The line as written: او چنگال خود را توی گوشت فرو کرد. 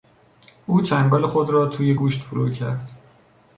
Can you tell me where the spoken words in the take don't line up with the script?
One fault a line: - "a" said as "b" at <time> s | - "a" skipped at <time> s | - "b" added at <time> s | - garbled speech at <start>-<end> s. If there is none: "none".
none